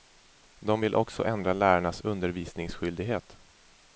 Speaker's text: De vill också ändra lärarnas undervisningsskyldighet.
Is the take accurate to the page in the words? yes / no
yes